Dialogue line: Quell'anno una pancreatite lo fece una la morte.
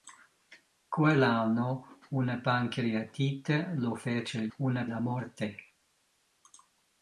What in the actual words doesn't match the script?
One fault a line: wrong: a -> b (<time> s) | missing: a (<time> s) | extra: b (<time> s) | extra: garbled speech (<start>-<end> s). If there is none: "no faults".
no faults